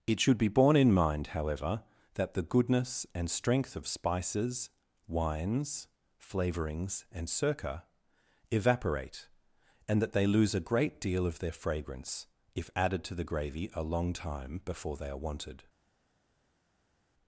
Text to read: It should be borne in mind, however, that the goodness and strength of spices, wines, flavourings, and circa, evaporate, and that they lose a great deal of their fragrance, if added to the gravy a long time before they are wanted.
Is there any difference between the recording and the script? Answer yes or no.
no